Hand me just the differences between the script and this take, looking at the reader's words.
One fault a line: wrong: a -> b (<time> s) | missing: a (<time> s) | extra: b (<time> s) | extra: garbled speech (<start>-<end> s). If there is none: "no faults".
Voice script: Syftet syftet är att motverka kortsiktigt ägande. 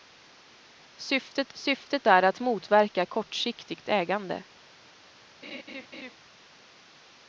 no faults